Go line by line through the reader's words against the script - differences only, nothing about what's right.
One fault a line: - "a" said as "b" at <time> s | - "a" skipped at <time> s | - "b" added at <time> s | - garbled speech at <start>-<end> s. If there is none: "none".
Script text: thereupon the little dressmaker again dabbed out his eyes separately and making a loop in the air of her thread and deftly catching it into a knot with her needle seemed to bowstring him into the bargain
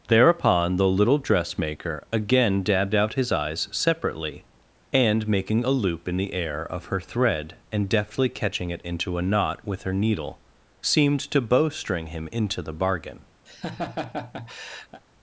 none